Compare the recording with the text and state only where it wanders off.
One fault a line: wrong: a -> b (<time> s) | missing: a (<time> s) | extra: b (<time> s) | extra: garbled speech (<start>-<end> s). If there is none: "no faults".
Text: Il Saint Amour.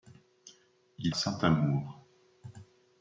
no faults